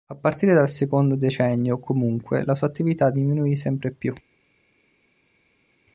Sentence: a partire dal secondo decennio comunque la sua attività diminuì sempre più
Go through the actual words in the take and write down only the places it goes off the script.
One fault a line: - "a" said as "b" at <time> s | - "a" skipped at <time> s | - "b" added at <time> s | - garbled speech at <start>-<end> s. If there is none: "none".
none